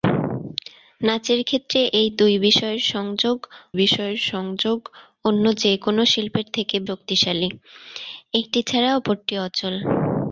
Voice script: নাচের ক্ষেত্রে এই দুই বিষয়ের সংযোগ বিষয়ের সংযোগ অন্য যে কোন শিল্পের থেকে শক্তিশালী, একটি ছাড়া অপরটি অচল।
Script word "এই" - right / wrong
right